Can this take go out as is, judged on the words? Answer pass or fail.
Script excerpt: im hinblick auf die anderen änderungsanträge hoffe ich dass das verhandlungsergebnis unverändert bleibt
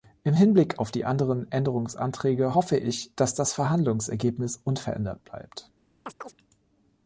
pass